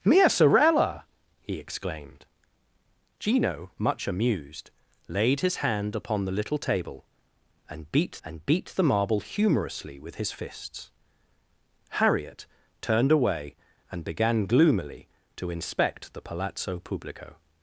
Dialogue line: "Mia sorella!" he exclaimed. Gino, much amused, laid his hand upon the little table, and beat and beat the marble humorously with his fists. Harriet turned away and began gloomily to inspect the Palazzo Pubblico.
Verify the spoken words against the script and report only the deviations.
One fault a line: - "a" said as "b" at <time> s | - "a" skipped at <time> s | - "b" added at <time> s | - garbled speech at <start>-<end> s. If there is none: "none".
none